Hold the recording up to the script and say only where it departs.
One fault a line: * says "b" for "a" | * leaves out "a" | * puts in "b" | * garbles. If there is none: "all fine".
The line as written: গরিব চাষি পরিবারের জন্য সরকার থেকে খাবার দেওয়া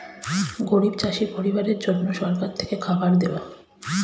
all fine